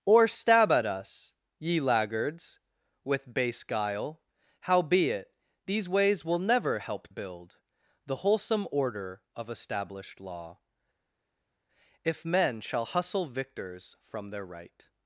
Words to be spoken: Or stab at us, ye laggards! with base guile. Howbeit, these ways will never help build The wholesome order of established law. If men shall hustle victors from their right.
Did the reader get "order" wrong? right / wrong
right